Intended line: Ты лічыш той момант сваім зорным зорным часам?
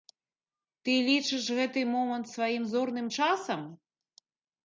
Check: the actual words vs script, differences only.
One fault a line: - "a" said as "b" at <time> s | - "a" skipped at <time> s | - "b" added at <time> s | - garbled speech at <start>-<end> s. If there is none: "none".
- "той" said as "гэты" at 1.6 s
- "зорным" skipped at 3.1 s